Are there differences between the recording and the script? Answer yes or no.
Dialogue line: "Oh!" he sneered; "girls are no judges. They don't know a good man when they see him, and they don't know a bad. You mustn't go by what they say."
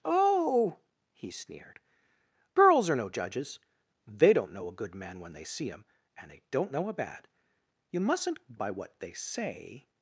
yes